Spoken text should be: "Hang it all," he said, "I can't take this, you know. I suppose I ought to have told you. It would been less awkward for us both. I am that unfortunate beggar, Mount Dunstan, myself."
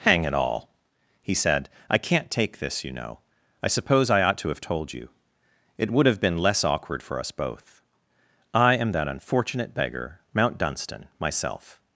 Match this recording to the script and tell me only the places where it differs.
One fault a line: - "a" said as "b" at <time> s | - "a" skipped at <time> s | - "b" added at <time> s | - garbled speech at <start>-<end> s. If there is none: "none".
- "have" added at 6.1 s